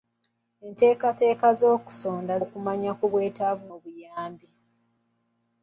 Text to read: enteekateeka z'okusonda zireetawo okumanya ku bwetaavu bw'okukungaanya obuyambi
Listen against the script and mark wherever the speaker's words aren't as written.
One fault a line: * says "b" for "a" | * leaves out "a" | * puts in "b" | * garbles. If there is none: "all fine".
* leaves out "zireetawo"
* leaves out "bw'okukungaanya"